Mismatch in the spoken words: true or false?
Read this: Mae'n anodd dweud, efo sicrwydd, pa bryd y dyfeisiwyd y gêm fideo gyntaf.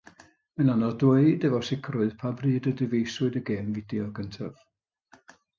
false